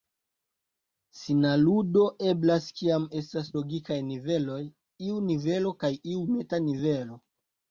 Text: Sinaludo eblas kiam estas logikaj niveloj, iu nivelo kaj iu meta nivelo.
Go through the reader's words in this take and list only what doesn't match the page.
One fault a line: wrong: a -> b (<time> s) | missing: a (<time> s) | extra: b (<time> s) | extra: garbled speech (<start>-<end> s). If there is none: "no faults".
no faults